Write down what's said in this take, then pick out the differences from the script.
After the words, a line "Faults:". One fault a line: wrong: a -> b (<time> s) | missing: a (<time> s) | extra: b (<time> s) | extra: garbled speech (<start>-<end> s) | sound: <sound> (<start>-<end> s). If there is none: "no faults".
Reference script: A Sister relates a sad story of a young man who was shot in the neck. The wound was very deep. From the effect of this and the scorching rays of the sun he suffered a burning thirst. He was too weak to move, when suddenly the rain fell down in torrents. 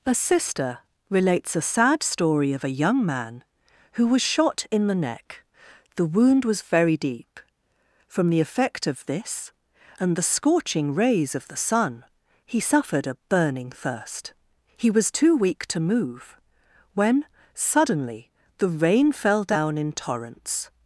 A Sister relates a sad story of a young man who was shot in the neck. The wound was very deep. From the effect of this and the scorching rays of the sun he suffered a burning thirst. He was too weak to move, when suddenly the rain fell down in torrents.
Faults:
no faults